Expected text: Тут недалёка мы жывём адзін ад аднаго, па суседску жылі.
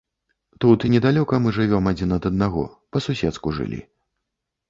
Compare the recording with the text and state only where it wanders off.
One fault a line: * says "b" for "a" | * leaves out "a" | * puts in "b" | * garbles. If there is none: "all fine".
all fine